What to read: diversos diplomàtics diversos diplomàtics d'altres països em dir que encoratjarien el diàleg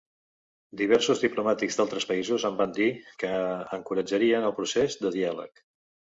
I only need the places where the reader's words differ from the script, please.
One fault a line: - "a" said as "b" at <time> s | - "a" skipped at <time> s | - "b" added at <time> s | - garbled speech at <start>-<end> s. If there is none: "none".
- "diversos diplomàtics" skipped at 1.8 s
- "van" added at 2.6 s
- "procés de" added at 4.6 s